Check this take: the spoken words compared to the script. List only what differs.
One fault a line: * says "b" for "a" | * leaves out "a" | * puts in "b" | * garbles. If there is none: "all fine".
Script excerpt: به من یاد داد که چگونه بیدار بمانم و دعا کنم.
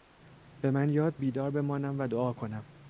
* leaves out "داد که چگونه"